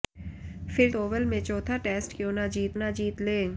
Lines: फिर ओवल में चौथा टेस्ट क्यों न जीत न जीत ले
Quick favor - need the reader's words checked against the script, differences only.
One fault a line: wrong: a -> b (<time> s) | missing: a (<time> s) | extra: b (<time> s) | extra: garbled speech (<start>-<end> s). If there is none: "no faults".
no faults